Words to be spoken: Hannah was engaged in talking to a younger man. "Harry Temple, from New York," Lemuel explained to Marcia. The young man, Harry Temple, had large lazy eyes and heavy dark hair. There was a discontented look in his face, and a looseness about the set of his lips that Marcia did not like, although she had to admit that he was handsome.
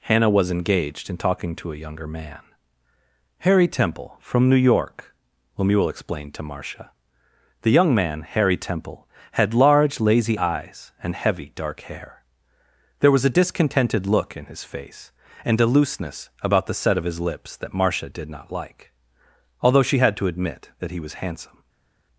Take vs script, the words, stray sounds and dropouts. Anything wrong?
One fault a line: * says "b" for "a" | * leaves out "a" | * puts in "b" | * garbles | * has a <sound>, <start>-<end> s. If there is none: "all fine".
all fine